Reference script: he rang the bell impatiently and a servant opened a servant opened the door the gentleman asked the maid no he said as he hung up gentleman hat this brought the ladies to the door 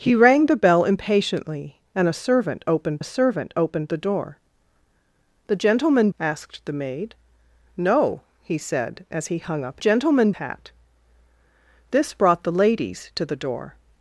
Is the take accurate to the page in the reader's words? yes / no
yes